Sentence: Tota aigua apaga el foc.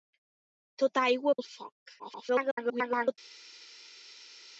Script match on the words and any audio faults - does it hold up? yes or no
no